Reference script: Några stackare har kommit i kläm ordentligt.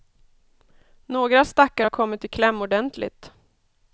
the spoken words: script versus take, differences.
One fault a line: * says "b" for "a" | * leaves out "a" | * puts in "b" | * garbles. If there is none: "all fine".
all fine